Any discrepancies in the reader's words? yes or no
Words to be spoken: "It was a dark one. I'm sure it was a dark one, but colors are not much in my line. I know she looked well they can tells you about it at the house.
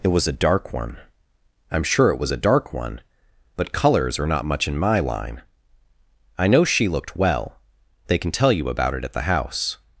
yes